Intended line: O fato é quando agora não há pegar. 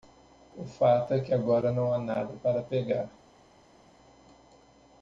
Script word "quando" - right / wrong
wrong